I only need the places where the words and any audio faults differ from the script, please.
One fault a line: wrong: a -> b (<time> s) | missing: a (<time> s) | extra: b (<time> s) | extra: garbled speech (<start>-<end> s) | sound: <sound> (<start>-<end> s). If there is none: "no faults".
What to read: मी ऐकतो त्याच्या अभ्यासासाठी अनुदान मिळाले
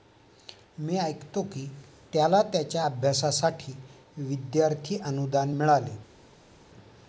extra: की त्याला (1.4 s)
extra: विद्यार्थी (4.2 s)